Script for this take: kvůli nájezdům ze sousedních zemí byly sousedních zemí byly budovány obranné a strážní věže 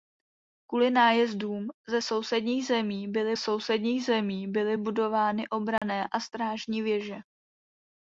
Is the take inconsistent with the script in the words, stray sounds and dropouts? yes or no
yes